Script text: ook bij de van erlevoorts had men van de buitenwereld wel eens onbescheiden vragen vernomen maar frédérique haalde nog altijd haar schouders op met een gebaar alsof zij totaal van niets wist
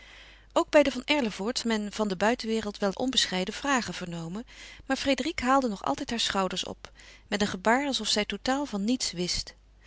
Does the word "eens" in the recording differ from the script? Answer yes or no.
yes